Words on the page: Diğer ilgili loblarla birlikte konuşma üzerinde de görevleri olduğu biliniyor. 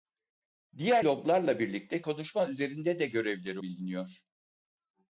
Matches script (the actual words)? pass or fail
fail